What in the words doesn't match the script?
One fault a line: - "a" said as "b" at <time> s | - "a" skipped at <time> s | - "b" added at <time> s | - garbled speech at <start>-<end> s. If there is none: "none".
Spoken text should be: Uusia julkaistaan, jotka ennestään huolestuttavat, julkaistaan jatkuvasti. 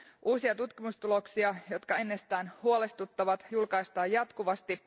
- "julkaistaan" said as "tutkimustuloksia" at 0.6 s